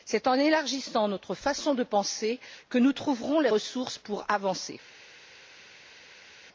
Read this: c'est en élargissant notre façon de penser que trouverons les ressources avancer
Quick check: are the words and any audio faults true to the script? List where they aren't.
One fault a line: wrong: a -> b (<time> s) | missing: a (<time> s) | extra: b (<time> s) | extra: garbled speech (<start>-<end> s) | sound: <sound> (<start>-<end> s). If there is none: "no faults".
extra: nous (2.8 s)
extra: pour (4.0 s)